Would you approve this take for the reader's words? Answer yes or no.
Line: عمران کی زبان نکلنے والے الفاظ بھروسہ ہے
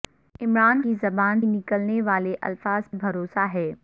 yes